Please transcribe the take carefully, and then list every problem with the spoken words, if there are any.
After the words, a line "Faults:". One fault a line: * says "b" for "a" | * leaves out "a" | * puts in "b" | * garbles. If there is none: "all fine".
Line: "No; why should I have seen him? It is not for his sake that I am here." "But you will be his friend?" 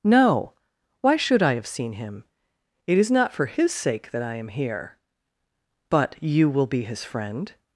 "No; why should I have seen him? It is not for his sake that I am here." "But you will be his friend?"
Faults:
all fine